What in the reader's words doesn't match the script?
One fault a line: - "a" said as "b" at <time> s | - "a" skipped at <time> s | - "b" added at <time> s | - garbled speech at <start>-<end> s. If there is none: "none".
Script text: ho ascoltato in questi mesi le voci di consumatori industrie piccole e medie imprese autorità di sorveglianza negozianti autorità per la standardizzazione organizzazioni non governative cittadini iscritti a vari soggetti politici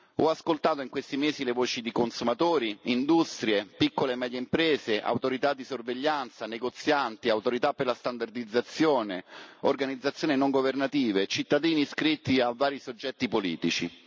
none